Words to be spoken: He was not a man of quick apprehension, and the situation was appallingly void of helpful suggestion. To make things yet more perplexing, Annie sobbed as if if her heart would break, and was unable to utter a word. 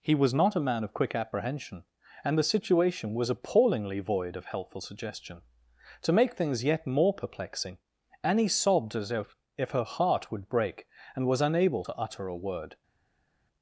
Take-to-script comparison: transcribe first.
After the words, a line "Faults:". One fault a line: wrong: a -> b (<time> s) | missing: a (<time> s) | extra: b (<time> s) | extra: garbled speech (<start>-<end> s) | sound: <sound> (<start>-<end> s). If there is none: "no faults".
He was not a man of quick apprehension, and the situation was appallingly void of helpful suggestion. To make things yet more perplexing, Annie sobbed as if if her heart would break, and was unable to utter a word.
Faults:
no faults